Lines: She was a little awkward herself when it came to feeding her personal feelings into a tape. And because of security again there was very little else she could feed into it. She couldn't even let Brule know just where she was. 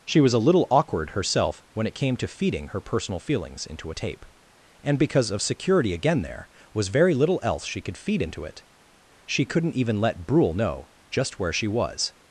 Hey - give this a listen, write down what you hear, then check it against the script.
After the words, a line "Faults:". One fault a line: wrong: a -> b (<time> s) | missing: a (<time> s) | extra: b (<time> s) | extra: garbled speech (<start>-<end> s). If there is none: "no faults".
She was a little awkward herself when it came to feeding her personal feelings into a tape. And because of security again there was very little else she could feed into it. She couldn't even let Brule know just where she was.
Faults:
no faults